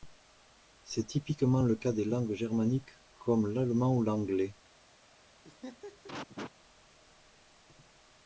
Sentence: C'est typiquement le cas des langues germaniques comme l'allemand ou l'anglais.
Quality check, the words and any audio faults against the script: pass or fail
fail